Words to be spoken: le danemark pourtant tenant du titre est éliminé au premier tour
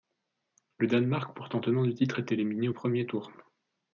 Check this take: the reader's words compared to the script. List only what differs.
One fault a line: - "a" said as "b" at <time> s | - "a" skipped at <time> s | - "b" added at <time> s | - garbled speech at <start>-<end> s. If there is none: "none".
none